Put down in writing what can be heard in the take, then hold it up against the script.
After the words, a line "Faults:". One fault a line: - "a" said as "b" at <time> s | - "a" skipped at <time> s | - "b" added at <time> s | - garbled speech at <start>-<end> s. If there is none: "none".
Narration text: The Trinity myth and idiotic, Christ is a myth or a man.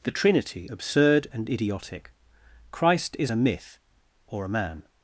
The Trinity absurd and idiotic, Christ is a myth or a man.
Faults:
- "myth" said as "absurd" at 0.7 s